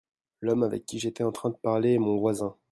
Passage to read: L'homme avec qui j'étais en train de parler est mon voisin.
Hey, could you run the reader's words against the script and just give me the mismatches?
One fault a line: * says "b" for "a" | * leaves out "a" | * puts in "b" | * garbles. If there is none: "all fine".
all fine